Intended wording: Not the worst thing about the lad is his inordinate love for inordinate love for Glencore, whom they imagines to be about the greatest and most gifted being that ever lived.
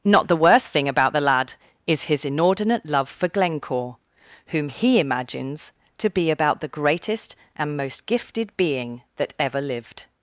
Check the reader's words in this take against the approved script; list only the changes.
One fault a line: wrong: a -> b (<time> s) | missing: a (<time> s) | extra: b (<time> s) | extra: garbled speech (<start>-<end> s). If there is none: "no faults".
missing: inordinate love for (3.3 s)
wrong: they -> he (4.7 s)